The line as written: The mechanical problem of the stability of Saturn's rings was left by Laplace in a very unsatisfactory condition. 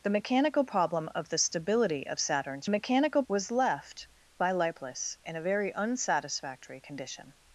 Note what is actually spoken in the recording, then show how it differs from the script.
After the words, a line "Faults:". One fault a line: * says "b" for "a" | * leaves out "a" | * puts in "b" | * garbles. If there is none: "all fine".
The mechanical problem of the stability of Saturn's mechanical was left by Laplace in a very unsatisfactory condition.
Faults:
* says "mechanical" for "rings"